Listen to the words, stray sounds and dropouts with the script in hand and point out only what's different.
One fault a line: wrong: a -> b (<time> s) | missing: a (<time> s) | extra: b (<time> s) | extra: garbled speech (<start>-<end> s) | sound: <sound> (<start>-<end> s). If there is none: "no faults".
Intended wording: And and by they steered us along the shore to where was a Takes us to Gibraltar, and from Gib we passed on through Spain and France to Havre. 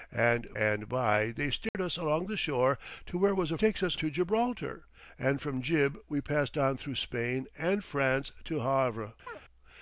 sound: dropout (1.7-1.7 s)
sound: chirp (9.3-9.4 s)